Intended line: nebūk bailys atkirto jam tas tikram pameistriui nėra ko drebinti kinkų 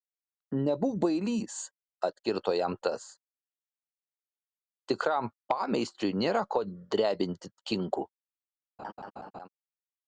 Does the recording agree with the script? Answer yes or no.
yes